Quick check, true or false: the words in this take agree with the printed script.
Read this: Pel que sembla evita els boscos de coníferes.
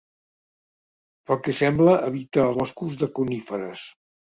false